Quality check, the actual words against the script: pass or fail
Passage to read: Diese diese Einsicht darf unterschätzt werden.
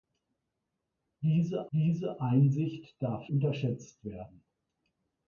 pass